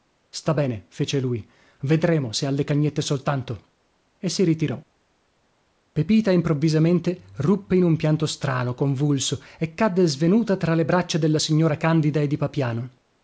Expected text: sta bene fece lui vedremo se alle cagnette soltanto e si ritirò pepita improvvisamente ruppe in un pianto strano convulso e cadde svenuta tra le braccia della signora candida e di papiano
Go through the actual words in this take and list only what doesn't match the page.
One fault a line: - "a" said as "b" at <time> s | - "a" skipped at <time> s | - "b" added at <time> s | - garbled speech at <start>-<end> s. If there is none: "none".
none